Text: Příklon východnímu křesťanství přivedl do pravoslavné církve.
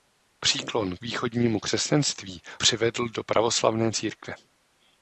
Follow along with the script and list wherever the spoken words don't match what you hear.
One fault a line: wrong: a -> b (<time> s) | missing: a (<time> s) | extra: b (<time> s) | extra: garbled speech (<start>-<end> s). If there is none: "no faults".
no faults